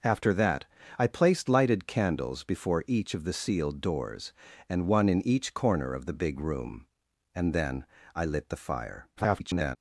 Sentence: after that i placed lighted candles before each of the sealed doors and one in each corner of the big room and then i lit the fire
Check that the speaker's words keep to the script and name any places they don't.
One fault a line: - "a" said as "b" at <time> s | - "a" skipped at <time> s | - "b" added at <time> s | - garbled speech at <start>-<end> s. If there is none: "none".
- garbled speech at 9.2-9.8 s